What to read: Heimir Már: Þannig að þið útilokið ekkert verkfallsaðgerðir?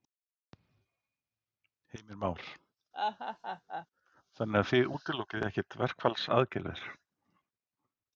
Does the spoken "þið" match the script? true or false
true